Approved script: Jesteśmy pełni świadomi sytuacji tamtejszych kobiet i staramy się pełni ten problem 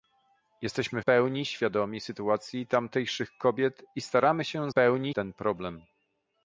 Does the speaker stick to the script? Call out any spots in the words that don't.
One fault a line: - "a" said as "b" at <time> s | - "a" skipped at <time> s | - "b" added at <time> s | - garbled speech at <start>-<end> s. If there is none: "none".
none